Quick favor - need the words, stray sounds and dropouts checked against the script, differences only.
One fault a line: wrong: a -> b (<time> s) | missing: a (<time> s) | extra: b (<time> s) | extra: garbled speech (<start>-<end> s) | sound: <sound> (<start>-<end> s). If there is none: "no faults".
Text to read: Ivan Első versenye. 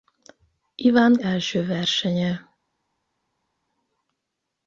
no faults